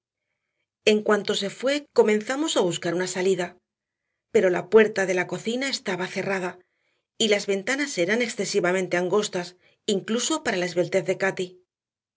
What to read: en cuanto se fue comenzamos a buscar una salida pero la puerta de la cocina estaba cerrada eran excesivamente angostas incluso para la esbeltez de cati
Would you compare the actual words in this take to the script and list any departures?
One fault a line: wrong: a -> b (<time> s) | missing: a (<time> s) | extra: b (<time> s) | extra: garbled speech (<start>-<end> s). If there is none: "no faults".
extra: y las ventanas (7.2 s)